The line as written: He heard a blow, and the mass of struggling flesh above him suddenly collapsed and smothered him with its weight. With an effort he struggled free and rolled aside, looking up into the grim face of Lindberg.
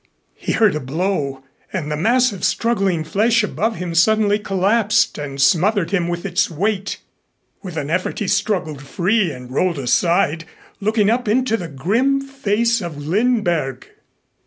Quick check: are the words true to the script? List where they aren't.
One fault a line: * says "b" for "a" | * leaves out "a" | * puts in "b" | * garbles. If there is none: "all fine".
all fine